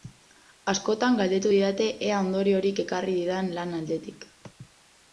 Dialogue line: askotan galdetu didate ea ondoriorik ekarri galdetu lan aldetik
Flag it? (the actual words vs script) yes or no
yes